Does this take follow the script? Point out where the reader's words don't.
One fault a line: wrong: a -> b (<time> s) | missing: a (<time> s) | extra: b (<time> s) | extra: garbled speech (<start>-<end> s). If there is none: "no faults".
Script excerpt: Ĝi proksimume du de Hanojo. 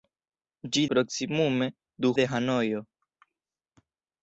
no faults